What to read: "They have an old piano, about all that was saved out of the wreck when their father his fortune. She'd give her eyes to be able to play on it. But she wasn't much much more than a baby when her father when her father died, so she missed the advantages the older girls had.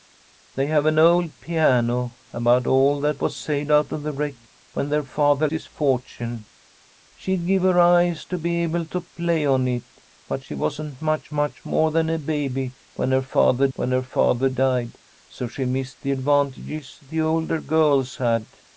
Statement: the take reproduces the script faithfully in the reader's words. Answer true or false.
true